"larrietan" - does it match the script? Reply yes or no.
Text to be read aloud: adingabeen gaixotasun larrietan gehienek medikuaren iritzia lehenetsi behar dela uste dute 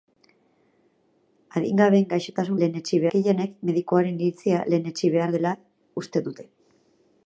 no